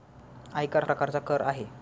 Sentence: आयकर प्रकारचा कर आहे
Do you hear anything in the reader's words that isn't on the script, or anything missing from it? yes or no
no